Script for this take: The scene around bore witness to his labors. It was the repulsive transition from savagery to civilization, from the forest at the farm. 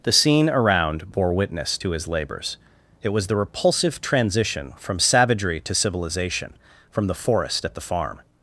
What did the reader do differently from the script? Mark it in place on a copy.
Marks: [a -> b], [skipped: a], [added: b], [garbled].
The scene around bore witness to his labors. It was the repulsive transition from savagery to civilization, from the forest at the farm.